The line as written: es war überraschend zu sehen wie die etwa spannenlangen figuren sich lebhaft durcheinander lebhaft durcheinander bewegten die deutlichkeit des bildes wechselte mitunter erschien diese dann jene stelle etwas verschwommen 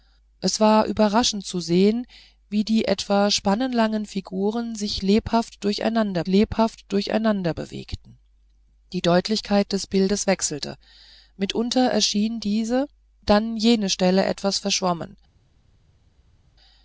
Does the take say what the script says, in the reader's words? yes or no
yes